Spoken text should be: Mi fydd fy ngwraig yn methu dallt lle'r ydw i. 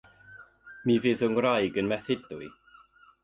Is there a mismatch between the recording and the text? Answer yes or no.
yes